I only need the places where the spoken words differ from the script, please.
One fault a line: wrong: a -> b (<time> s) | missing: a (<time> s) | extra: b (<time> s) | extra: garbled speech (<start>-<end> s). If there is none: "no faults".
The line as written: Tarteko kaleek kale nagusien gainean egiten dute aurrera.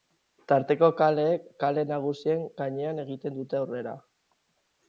no faults